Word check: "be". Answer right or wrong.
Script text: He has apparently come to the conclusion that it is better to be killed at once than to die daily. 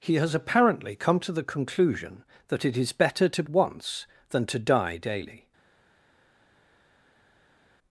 wrong